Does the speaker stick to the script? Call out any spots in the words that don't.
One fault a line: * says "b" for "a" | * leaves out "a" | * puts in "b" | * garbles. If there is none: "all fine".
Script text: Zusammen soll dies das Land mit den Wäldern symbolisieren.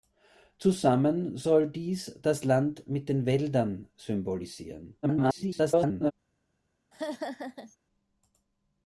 * garbles